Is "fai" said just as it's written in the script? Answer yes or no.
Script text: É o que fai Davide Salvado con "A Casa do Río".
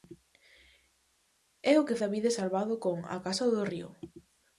no